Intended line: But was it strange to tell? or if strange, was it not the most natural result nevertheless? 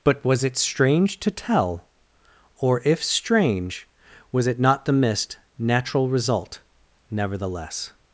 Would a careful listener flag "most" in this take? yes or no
yes